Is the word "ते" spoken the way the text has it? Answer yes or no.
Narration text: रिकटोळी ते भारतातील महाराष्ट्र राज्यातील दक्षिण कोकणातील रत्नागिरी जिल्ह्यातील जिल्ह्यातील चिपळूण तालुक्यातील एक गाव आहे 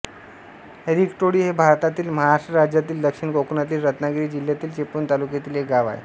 no